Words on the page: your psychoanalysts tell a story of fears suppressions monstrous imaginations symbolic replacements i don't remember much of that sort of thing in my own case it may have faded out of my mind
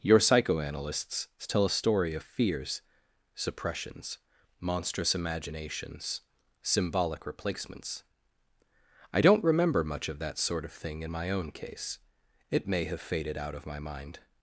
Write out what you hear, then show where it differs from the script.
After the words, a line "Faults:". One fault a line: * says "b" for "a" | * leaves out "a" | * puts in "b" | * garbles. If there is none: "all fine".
your psychoanalysts tell a story of fears suppressions monstrous imaginations symbolic replacements i don't remember much of that sort of thing in my own case it may have faded out of my mind
Faults:
all fine